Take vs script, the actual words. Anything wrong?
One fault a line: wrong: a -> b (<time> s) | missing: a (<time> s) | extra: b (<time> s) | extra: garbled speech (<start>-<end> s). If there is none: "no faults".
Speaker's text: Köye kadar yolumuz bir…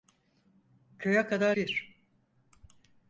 missing: yolumuz (1.6 s)